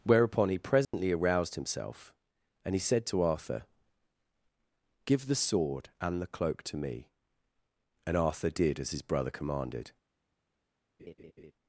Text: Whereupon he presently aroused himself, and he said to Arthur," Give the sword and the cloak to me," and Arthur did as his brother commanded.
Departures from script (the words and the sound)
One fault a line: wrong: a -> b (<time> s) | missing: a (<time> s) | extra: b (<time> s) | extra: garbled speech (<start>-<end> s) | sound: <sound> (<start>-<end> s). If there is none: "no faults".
sound: dropout (0.8-0.9 s)
sound: laugh (11.0-11.5 s)